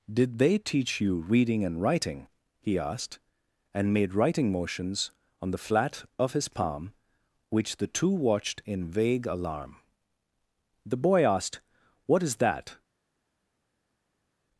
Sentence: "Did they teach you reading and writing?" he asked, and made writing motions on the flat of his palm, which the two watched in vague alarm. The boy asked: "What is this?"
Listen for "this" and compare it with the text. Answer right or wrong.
wrong